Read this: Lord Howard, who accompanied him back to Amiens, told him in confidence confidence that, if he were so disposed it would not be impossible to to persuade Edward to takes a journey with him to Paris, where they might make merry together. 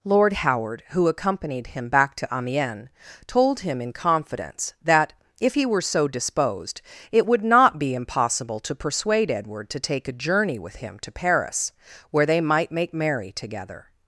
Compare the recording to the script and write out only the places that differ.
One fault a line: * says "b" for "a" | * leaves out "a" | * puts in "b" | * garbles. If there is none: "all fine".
* leaves out "confidence"
* leaves out "to"
* says "take" for "takes"